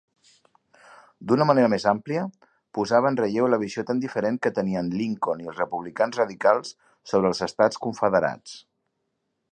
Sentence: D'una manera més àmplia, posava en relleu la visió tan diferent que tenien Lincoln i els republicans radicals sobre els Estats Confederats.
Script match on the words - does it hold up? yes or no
yes